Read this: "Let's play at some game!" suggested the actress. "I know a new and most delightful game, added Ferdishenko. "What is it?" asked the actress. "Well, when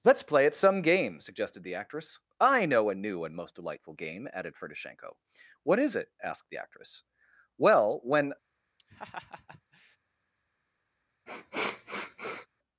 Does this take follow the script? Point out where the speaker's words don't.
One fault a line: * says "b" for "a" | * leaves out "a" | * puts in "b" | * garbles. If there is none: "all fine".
all fine